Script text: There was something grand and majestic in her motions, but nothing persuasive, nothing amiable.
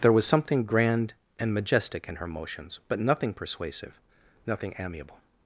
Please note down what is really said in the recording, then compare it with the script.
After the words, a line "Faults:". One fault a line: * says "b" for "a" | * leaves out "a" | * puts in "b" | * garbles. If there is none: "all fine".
There was something grand and majestic in her motions, but nothing persuasive, nothing amiable.
Faults:
all fine